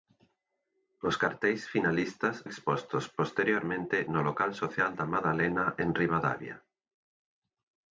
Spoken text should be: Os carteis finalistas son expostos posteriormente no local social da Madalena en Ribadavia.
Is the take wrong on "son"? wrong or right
wrong